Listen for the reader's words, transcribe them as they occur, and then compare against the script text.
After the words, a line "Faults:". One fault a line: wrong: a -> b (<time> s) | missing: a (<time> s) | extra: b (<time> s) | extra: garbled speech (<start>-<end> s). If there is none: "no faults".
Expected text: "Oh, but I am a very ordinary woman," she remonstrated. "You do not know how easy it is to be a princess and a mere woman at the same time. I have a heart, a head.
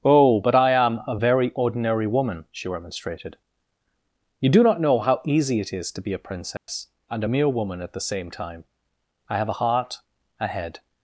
"Oh, but I am a very ordinary woman," she remonstrated. "You do not know how easy it is to be a princess and a mere woman at the same time. I have a heart, a head.
Faults:
no faults